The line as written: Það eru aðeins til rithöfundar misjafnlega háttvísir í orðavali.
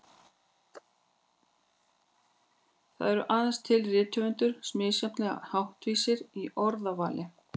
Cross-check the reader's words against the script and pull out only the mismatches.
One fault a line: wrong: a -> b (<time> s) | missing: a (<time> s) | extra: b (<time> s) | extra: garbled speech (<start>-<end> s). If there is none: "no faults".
no faults